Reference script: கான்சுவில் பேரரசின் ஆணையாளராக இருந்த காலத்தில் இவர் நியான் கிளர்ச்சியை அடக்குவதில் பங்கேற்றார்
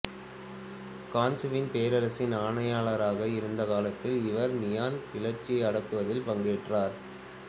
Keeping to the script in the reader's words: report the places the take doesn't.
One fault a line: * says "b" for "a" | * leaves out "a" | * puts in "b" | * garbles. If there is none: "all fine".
all fine